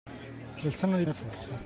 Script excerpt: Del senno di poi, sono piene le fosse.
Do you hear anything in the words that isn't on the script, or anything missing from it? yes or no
yes